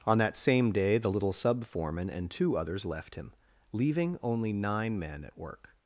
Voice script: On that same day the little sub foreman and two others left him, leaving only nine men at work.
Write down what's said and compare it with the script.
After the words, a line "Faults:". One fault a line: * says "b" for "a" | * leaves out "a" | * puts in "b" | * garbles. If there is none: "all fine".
On that same day the little sub foreman and two others left him, leaving only nine men at work.
Faults:
all fine